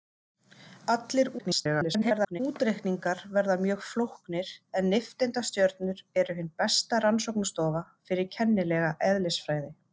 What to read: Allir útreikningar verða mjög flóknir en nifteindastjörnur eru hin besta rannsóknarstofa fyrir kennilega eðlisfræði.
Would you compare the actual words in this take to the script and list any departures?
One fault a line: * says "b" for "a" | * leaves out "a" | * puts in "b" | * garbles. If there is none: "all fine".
* garbles